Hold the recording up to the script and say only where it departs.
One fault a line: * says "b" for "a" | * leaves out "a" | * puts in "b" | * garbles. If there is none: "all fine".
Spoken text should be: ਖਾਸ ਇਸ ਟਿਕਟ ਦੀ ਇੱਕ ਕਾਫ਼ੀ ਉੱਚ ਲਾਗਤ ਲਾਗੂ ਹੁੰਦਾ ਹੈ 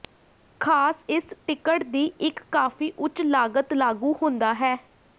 all fine